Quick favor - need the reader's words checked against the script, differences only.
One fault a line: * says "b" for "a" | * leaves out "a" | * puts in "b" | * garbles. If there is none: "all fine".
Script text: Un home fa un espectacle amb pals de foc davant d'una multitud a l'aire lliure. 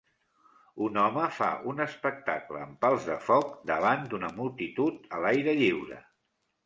all fine